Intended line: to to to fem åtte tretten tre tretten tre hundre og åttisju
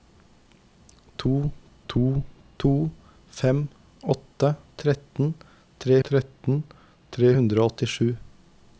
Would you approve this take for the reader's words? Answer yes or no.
yes